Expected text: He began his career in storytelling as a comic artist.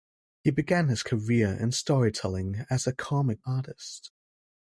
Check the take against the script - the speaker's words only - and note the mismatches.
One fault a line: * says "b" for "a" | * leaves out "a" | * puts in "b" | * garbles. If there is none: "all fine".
all fine